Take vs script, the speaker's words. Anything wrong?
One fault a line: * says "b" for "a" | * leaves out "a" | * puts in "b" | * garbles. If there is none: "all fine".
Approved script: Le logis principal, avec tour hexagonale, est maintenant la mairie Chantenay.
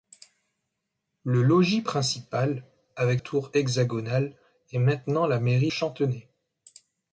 all fine